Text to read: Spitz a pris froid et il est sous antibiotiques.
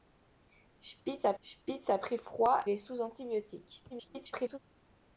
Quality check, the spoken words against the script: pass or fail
fail